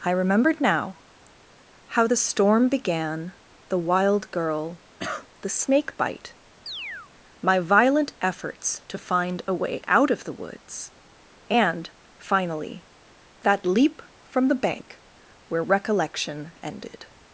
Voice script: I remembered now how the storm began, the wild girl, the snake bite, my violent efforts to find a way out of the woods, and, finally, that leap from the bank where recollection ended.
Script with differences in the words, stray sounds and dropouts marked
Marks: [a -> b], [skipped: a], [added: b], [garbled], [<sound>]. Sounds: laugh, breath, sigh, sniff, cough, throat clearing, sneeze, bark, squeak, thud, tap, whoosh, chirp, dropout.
I remembered now how the storm began, the wild girl, [cough] the snake bite, [chirp] my violent efforts to find a way out of the woods, and, finally, that leap from the bank where recollection ended.